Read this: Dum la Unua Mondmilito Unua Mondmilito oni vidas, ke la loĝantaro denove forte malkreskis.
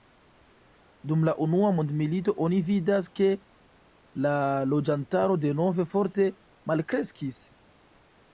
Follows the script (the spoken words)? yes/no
no